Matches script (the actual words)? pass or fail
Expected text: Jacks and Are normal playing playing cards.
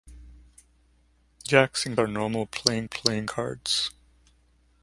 pass